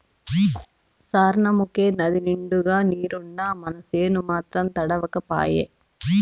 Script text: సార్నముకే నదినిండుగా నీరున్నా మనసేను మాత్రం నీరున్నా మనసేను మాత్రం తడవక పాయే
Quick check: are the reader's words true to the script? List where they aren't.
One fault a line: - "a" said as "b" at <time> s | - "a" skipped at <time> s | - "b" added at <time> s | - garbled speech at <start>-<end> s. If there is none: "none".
- "నీరున్నా మనసేను మాత్రం" skipped at 4.7 s